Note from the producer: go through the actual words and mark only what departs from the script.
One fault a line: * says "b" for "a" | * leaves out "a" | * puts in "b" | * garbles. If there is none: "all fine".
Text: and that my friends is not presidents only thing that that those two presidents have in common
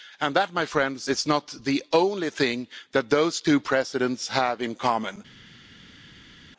* says "the" for "presidents"
* leaves out "that"